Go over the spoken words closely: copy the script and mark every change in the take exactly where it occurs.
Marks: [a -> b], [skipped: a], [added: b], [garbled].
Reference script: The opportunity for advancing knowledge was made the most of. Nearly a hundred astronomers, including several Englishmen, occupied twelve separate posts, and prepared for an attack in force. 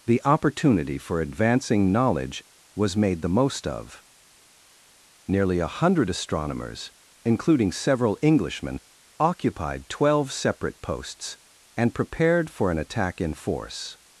The opportunity for advancing knowledge was made the most of. Nearly a hundred astronomers, including several Englishmen, occupied twelve separate posts, and prepared for an attack in force.